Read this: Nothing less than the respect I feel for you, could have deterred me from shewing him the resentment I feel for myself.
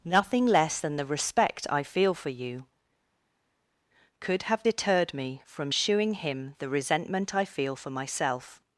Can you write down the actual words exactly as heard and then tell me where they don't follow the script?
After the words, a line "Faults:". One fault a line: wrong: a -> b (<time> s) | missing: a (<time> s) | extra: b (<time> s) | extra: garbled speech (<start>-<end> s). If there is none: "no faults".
Nothing less than the respect I feel for you, could have deterred me from shewing him the resentment I feel for myself.
Faults:
no faults